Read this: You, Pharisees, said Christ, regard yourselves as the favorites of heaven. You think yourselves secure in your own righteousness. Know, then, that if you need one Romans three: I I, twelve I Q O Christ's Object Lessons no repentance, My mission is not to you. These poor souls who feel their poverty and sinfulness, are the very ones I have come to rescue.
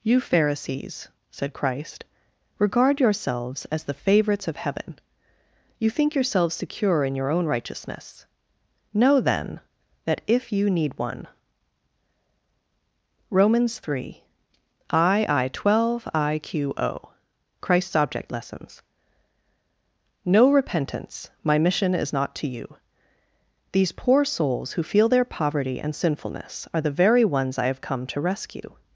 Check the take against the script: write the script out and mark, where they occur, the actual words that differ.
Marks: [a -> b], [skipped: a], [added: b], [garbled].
You, Pharisees, said Christ, regard yourselves as the favorites of heaven. You think yourselves secure in your own righteousness. Know, then, that if you need one Romans three: I I, twelve I Q O Christ's Object Lessons no repentance, My mission is not to you. These poor souls who feel their poverty and sinfulness, are the very ones I have come to rescue.